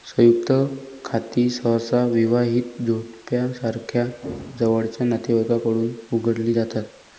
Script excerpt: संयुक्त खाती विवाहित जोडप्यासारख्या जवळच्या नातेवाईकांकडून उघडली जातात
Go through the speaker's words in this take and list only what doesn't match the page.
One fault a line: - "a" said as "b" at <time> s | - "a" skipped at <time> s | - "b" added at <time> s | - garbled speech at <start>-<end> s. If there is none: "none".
- "सहसा" added at 1.5 s